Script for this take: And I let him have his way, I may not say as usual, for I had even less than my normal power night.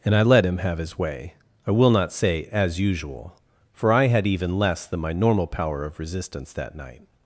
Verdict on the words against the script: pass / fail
fail